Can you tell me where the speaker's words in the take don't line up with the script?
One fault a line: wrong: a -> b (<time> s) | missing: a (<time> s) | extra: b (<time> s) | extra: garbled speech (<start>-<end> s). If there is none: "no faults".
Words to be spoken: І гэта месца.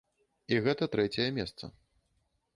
extra: трэцяе (0.9 s)